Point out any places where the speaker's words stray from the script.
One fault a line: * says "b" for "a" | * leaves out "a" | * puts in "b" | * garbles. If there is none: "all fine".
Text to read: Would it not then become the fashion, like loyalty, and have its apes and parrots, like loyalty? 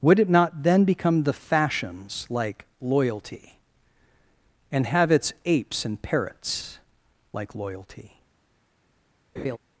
* says "fashions" for "fashion"